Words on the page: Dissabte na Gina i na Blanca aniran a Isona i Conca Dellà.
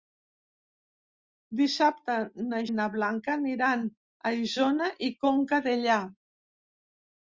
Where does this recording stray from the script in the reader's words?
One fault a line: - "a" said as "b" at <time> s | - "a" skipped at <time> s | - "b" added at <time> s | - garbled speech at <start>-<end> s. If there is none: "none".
- "Gina" skipped at 2.6 s